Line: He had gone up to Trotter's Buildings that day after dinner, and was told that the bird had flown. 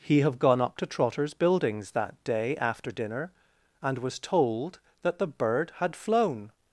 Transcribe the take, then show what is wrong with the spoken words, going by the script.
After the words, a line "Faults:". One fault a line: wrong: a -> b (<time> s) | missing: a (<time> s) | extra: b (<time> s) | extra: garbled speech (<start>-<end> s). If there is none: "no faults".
He have gone up to Trotter's Buildings that day after dinner, and was told that the bird had flown.
Faults:
wrong: had -> have (0.2 s)